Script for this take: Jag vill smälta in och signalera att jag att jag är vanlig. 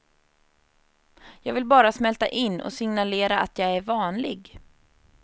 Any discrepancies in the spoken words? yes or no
yes